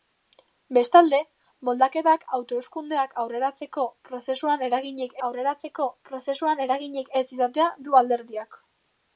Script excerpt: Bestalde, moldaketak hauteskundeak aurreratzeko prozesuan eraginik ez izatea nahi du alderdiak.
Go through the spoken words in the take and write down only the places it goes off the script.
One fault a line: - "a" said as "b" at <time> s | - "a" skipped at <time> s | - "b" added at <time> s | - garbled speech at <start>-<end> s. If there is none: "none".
- "aurreratzeko prozesuan eraginik" added at 5.3 s
- "nahi" skipped at 7.7 s